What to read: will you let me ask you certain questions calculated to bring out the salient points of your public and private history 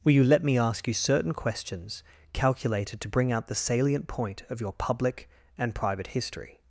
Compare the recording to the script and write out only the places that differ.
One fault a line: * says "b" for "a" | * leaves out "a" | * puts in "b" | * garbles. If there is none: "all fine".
* says "point" for "points"